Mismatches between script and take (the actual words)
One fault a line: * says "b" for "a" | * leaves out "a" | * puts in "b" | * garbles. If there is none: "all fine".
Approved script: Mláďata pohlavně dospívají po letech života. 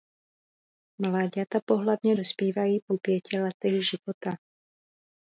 * puts in "pěti"